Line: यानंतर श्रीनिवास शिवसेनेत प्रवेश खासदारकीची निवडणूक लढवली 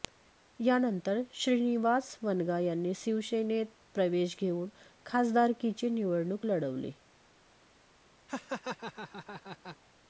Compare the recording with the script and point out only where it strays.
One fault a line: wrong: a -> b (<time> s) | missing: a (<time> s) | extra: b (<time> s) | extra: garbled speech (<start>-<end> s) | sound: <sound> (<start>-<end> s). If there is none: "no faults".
extra: वनगा यांनी (2.2 s)
extra: घेऊन (4.4 s)
sound: laugh (8.3-9.8 s)